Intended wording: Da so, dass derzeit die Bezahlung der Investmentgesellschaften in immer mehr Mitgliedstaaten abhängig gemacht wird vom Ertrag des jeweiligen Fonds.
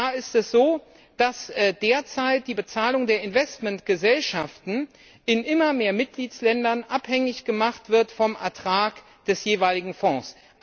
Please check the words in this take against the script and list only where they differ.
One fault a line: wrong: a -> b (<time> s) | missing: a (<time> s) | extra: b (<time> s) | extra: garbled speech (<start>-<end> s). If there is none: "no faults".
extra: ist es (0.1 s)